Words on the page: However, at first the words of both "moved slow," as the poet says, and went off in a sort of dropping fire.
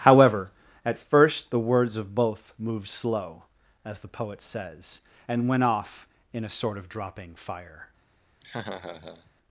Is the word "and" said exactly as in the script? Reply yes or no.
yes